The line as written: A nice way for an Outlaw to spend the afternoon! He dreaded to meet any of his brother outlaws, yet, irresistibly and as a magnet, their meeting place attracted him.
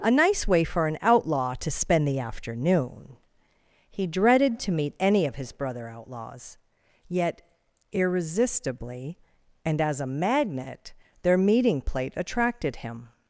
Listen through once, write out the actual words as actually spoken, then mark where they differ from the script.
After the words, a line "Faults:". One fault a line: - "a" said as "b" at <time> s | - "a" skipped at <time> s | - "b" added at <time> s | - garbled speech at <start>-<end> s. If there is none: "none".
A nice way for an Outlaw to spend the afternoon! He dreaded to meet any of his brother outlaws, yet, irresistibly and as a magnet, their meeting plate attracted him.
Faults:
- "place" said as "plate" at 11.8 s